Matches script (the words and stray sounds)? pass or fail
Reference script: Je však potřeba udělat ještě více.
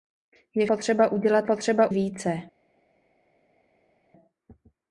fail